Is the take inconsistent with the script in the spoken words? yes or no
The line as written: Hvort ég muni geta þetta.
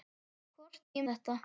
yes